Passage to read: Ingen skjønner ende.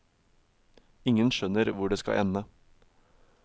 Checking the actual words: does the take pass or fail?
fail